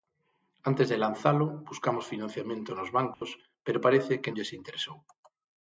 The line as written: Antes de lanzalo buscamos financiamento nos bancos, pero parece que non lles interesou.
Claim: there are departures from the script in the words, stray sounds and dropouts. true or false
true